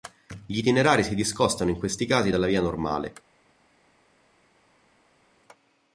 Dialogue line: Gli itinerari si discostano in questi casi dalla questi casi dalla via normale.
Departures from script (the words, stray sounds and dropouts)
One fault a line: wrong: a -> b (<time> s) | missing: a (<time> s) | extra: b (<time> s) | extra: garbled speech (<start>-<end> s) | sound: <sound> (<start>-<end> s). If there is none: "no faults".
missing: questi casi dalla (2.5 s)